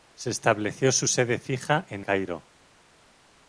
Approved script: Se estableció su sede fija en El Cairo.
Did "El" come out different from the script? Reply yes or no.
yes